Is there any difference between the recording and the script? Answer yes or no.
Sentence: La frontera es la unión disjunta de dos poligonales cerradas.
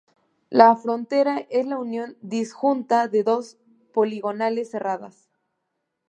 no